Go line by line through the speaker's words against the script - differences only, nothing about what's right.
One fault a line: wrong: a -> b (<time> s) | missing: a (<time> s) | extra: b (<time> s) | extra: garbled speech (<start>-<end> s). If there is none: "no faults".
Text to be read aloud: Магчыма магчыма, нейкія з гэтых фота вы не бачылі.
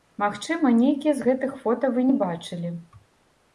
missing: магчыма (0.7 s)